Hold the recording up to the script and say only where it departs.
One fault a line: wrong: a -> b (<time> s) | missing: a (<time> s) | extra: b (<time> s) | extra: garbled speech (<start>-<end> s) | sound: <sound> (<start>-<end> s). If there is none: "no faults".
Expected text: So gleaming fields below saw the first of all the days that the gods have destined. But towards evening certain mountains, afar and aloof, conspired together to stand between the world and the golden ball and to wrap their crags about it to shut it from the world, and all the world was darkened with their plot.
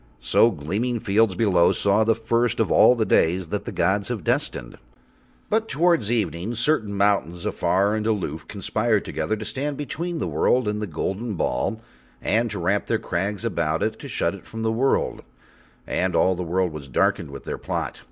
no faults